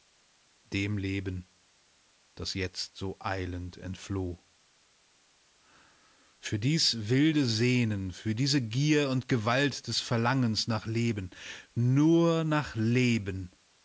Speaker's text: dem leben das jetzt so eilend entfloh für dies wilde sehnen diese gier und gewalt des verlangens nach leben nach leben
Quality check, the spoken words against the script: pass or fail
fail